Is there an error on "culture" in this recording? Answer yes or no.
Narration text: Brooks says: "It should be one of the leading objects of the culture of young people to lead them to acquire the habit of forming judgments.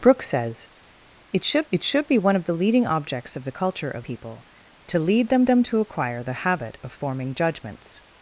no